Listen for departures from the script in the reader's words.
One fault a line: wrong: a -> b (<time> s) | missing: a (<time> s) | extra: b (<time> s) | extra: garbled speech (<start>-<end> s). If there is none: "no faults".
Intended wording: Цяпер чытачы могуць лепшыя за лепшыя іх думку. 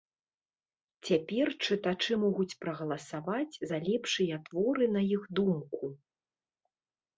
wrong: лепшыя -> прагаласаваць (2.6 s)
extra: творы на (4.5 s)